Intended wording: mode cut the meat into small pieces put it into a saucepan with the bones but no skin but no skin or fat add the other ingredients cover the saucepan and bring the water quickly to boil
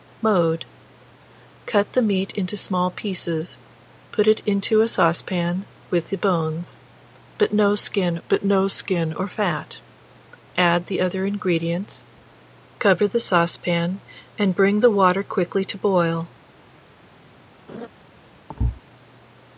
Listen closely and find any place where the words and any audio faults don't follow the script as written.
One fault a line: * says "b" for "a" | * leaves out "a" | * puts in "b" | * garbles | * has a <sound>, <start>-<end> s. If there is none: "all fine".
* has a laugh, 17.7-17.9 s
* has a thud, 18.5-18.8 s